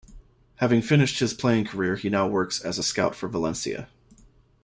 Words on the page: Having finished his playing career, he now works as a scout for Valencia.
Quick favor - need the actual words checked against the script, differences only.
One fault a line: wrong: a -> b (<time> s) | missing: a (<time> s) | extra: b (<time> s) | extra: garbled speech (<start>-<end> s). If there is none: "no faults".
no faults